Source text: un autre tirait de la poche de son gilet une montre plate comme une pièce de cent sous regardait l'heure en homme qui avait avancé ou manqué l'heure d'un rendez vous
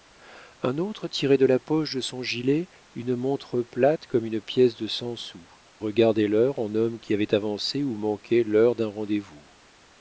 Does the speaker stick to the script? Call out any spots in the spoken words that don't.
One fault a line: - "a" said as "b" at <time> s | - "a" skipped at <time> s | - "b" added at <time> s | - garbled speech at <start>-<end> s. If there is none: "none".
none